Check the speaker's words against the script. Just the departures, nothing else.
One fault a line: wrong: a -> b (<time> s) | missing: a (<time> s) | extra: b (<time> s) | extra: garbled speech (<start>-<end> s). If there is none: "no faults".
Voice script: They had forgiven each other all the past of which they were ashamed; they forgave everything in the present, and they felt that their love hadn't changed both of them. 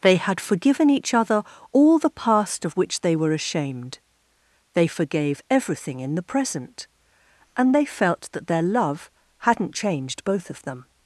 no faults